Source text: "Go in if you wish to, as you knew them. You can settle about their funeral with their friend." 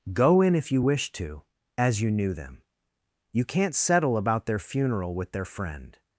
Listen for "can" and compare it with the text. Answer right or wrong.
wrong